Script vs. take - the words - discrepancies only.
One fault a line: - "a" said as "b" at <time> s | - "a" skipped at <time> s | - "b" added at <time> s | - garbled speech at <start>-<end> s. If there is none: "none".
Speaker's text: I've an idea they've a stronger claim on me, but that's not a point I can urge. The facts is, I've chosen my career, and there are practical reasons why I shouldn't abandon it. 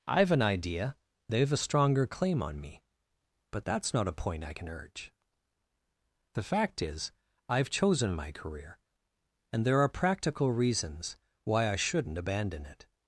- "facts" said as "fact" at 6.4 s